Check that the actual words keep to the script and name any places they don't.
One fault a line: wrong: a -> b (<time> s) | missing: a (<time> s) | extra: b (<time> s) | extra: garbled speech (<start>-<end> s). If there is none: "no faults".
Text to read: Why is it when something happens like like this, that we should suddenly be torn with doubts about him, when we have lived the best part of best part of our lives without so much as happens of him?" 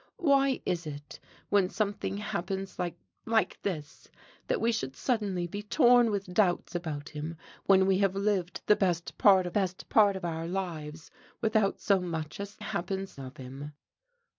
no faults